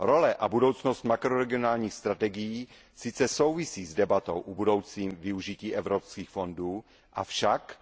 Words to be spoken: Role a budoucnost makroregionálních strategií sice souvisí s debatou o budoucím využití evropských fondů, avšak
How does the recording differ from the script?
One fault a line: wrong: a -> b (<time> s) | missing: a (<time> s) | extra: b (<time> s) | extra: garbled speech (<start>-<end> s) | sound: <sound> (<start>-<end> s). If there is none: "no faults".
no faults